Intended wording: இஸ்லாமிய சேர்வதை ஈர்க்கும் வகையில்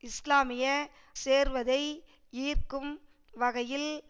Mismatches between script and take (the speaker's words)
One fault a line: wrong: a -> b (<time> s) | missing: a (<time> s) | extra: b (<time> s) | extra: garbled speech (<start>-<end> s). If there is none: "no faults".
no faults